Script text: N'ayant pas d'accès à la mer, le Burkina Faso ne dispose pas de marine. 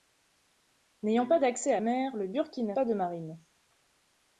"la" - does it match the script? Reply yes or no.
no